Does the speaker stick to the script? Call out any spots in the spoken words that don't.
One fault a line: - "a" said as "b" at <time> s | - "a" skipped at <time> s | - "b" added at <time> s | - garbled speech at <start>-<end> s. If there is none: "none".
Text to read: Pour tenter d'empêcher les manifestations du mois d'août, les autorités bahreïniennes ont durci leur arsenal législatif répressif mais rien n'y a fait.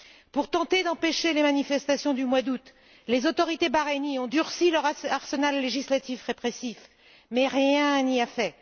none